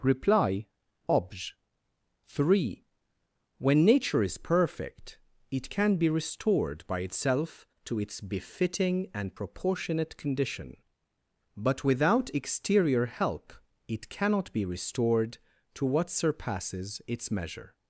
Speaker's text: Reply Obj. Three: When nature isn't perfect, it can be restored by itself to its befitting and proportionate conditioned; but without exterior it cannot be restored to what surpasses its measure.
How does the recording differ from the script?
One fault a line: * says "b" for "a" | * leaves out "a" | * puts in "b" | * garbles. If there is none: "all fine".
* says "is" for "isn't"
* says "condition" for "conditioned"
* puts in "help"